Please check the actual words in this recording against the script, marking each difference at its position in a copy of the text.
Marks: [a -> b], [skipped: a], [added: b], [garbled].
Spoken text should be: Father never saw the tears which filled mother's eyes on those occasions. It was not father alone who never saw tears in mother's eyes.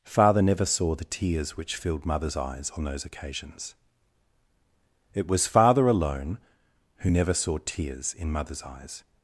Father never saw the tears which filled mother's eyes on those occasions. It was [skipped: not] father alone who never saw tears in mother's eyes.